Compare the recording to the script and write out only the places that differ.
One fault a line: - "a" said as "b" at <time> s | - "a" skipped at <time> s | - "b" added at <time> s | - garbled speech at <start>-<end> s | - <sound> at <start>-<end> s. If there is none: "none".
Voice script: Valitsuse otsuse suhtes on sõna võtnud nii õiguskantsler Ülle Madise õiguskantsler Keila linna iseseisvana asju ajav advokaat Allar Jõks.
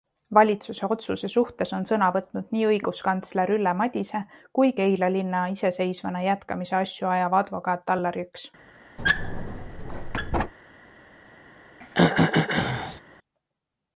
- "õiguskantsler" said as "kui" at 4.6 s
- "jätkamise" added at 6.3 s
- squeak at 9.0-10.5 s
- throat clearing at 11.8-13.0 s